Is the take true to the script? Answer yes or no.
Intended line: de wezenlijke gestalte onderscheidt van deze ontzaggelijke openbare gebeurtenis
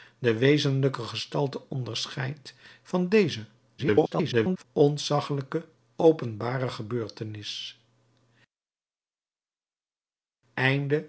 no